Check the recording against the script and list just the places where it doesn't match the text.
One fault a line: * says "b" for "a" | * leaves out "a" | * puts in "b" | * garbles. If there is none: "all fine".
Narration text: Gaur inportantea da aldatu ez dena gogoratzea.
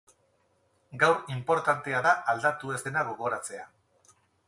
all fine